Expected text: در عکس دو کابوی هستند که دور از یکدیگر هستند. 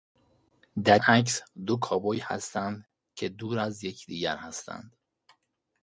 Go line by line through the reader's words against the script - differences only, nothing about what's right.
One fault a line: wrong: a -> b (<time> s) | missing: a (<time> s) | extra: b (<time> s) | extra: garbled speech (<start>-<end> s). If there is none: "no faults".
no faults